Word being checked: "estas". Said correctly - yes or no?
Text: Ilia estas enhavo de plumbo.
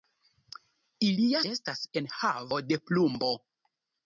yes